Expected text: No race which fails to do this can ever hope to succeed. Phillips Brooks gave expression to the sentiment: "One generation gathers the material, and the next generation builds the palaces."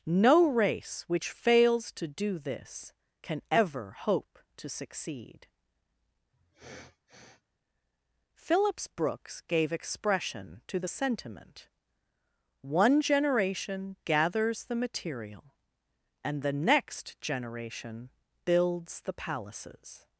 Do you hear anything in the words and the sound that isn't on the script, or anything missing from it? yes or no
yes